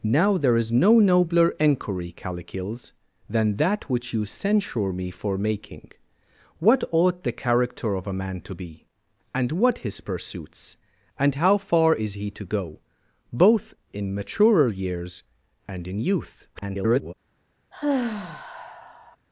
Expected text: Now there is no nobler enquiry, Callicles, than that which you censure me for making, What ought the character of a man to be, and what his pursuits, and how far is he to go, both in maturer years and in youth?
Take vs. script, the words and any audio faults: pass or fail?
fail